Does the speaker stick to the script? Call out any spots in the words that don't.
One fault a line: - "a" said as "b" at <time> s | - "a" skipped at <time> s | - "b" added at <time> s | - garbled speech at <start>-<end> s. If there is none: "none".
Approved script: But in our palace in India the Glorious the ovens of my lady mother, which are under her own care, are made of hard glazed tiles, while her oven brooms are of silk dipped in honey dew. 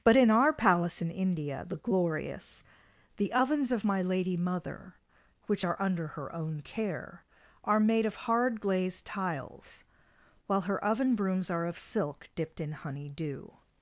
none